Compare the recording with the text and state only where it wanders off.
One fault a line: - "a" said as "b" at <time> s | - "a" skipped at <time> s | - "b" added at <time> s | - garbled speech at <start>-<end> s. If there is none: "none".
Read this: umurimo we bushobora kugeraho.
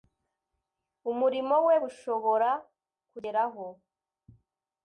none